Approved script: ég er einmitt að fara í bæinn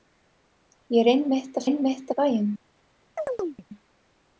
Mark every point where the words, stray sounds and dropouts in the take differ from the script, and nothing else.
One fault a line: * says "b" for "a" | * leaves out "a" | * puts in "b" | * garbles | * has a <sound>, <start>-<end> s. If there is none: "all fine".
* says "einmitt" for "fara"
* has a chirp, 3.2-3.7 s